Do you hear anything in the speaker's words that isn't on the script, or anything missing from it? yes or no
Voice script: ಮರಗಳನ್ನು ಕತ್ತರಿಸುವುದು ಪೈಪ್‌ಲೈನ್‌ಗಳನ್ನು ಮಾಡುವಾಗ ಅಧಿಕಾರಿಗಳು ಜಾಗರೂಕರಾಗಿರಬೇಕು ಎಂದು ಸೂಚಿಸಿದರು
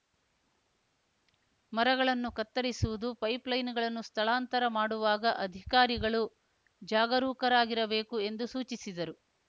yes